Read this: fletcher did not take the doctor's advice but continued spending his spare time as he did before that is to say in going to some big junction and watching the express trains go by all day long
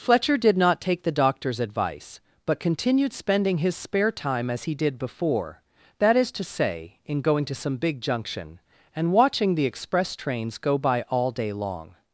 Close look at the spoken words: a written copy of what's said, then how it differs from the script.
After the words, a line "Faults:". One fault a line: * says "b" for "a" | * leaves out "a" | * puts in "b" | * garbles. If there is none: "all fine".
fletcher did not take the doctor's advice but continued spending his spare time as he did before that is to say in going to some big junction and watching the express trains go by all day long
Faults:
all fine